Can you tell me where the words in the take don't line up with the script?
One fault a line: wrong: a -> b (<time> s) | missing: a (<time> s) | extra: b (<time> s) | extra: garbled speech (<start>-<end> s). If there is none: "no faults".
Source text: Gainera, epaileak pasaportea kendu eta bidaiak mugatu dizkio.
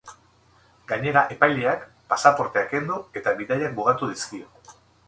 no faults